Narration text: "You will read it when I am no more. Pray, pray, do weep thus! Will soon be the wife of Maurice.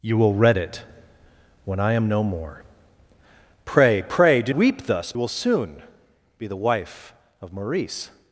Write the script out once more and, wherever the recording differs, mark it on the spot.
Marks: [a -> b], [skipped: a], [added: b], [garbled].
"You will read it when I am no more. Pray, pray, do weep thus! Will soon be the wife of Maurice.